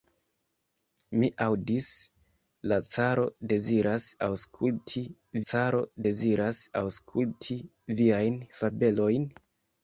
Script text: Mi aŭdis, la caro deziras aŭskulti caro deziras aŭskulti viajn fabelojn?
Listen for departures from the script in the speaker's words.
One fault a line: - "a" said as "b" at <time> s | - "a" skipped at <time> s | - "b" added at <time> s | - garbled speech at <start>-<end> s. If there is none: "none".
none